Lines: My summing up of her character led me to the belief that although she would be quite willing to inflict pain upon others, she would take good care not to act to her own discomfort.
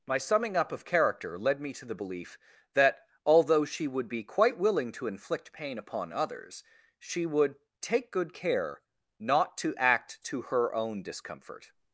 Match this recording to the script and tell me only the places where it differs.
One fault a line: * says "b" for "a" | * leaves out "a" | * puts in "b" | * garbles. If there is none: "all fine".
* leaves out "her"